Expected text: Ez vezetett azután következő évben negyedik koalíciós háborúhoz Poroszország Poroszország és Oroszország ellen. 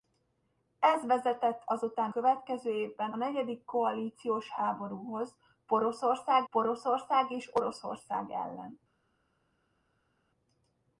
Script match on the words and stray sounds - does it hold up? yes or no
yes